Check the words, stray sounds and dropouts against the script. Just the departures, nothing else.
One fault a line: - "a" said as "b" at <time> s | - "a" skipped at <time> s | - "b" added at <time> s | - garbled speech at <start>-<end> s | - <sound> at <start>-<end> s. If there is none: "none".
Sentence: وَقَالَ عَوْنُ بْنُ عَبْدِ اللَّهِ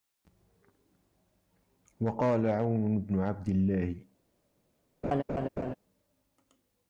- laugh at 5.0-5.7 s